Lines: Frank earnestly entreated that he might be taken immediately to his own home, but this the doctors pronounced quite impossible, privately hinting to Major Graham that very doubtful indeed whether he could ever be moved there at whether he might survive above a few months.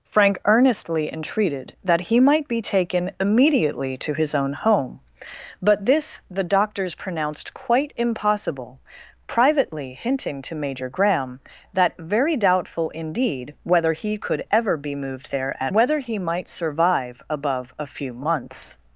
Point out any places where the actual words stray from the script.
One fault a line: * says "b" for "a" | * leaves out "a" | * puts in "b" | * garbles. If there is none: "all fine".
all fine